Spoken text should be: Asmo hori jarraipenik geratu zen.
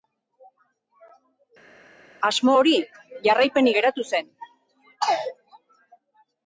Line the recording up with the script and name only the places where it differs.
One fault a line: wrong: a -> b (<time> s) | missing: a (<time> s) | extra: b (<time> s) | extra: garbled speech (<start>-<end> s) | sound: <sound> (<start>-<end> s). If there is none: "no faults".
no faults